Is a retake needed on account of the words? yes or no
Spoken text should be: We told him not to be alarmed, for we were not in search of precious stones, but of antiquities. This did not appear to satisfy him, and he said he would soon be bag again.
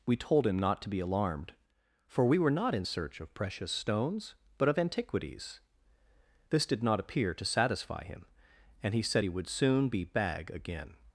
no